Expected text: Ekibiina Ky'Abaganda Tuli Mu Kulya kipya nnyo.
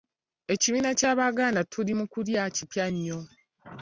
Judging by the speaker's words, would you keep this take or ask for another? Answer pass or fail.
pass